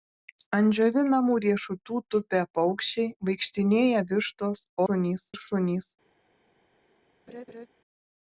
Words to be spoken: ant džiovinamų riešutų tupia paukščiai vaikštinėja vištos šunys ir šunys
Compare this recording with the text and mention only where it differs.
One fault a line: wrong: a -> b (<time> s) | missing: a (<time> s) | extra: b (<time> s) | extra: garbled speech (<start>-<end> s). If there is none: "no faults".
no faults